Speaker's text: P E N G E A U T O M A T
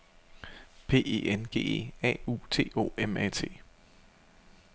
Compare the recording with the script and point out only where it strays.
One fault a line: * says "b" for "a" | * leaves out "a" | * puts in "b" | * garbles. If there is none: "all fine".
all fine